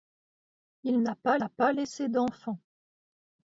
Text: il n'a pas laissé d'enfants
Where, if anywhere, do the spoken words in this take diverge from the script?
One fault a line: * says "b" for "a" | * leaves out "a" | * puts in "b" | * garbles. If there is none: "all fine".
* puts in "n'a pas"